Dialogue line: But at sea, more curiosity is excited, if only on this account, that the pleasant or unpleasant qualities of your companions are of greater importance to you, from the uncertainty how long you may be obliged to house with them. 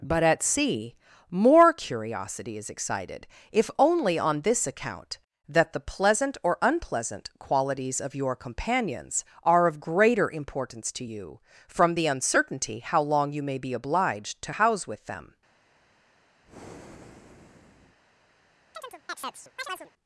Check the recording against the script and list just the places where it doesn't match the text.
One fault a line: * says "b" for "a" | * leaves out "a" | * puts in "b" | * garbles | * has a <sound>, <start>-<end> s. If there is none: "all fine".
* has a breath, 16.4-18.0 s
* has a chirp, 18.7-19.9 s